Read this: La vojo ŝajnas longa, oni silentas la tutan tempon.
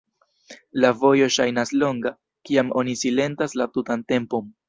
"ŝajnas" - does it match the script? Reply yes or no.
yes